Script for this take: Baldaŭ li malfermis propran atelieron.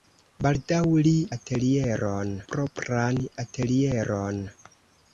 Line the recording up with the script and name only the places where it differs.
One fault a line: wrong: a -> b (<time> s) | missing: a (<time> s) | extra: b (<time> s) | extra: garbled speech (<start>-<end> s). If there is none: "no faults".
wrong: malfermis -> atelieron (1.4 s)